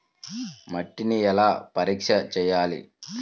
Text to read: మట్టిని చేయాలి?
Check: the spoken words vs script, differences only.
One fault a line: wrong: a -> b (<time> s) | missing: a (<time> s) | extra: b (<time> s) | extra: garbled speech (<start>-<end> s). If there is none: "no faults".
extra: ఎలా పరీక్ష (1.2 s)